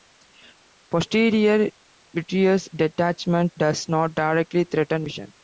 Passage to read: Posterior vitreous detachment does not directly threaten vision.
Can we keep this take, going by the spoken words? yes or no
yes